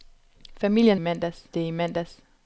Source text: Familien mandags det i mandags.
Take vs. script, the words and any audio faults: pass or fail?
pass